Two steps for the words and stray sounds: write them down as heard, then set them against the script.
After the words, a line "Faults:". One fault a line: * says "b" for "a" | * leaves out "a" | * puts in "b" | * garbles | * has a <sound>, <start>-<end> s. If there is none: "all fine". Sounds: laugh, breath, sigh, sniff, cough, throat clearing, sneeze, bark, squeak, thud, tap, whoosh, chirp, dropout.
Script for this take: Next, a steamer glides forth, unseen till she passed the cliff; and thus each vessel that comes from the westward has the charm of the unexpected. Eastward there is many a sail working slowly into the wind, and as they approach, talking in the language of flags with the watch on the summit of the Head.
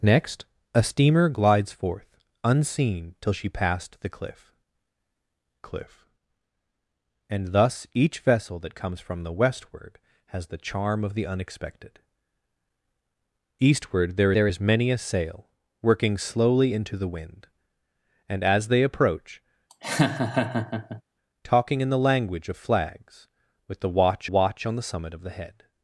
Next, a steamer glides forth, unseen till she passed the cliff cliff; and thus each vessel that comes from the westward has the charm of the unexpected. Eastward there there is many a sail working slowly into the wind, and as they approach, talking in the language of flags with the watch watch on the summit of the Head.
Faults:
* puts in "cliff"
* puts in "there"
* has a laugh, 19.7-21.0 s
* puts in "watch"